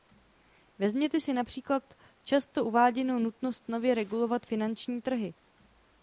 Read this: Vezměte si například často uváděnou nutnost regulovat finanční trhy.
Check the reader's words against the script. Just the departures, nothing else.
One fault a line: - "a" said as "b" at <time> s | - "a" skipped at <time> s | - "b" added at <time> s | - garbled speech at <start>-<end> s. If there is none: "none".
- "nově" added at 3.7 s